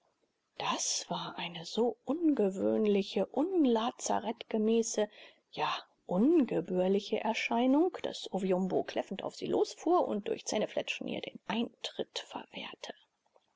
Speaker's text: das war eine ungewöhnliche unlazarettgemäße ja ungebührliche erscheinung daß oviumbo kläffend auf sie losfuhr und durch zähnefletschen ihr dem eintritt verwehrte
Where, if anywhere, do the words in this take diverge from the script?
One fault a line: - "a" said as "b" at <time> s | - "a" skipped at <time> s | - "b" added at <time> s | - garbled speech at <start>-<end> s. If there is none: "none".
- "so" added at 1.6 s
- "dem" said as "den" at 11.2 s